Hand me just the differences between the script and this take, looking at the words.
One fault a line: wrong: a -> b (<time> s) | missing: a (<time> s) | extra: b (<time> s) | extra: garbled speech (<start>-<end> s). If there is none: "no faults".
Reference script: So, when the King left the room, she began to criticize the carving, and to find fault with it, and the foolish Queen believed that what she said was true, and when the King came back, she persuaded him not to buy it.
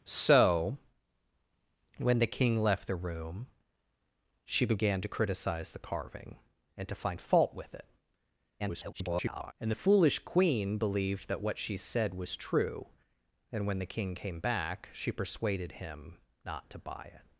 extra: garbled speech (8.6-9.5 s)